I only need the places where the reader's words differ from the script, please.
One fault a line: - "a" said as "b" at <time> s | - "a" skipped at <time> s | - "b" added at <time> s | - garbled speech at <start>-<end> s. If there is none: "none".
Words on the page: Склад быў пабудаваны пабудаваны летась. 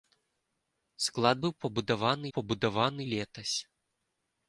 none